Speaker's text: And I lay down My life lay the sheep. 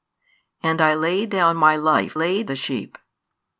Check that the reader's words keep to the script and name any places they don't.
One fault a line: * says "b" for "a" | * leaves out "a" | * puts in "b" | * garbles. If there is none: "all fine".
all fine